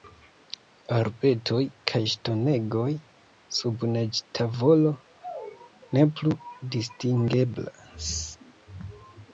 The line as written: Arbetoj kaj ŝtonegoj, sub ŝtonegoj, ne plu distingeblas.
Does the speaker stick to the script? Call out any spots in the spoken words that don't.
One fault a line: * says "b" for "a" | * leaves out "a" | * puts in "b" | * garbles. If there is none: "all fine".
* says "neĝtavolo" for "ŝtonegoj"